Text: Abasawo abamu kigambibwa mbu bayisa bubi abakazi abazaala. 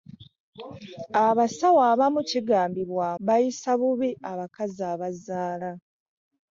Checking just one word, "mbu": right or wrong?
wrong